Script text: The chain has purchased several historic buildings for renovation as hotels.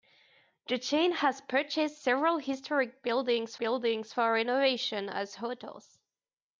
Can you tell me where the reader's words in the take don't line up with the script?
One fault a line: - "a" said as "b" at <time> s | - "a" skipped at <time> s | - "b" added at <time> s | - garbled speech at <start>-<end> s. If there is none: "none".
- "buildings" added at 3.6 s